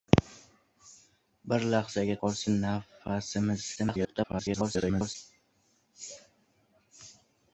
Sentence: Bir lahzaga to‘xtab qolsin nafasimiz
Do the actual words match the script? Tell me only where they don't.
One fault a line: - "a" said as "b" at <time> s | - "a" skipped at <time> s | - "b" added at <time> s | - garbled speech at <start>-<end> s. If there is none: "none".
- "to‘xtab" skipped at 2.2 s
- garbled speech at 3.8-5.2 s